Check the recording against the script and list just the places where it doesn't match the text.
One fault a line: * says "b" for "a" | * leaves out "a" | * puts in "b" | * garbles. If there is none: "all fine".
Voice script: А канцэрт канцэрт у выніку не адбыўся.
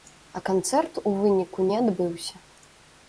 * leaves out "канцэрт"